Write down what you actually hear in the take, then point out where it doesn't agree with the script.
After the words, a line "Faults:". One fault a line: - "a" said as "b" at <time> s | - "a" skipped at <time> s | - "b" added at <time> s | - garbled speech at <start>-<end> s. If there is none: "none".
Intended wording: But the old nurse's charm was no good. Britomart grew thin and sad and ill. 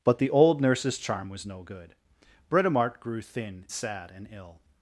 But the old nurse's charm was no good. Britomart grew thin sad and ill.
Faults:
- "and" skipped at 3.6 s